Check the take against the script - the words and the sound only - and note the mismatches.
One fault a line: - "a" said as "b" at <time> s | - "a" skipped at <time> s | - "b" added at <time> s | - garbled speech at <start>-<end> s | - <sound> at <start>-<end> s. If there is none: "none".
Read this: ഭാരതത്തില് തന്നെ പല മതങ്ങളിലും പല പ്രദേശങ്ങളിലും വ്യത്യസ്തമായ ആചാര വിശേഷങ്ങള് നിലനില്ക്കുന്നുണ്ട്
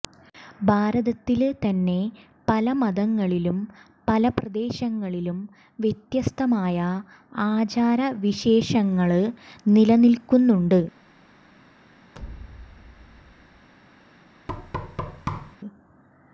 - thud at 12.1-13.7 s
- thud at 14.5-15.6 s